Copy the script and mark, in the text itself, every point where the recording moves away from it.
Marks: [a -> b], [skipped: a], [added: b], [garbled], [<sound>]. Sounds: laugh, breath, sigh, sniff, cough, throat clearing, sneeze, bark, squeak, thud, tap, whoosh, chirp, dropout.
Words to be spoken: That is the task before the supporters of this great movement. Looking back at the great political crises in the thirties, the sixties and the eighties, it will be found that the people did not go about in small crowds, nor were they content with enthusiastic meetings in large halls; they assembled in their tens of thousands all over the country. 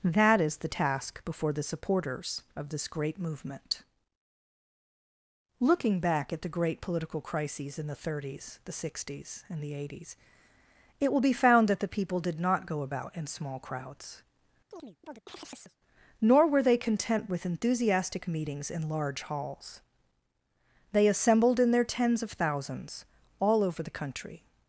That is the task before the supporters of this great movement. Looking back at the great political crises in the thirties, the sixties and the eighties, it will be found that the people did not go about in small crowds, [chirp] nor were they content with enthusiastic meetings in large halls; they assembled in their tens of thousands all over the country.